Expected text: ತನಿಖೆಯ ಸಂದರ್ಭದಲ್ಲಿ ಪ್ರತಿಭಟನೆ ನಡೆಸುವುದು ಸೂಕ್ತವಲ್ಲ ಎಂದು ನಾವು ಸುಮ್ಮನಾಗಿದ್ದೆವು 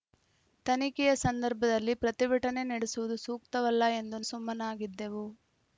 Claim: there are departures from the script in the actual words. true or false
true